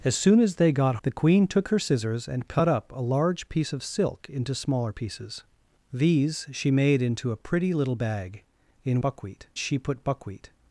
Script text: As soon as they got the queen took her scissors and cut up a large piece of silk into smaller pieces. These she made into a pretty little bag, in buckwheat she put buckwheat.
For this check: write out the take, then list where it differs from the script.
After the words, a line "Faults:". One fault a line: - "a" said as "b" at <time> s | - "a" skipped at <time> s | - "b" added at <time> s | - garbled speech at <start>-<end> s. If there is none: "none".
As soon as they got the queen took her scissors and cut up a large piece of silk into smaller pieces. These she made into a pretty little bag, in buckwheat she put buckwheat.
Faults:
none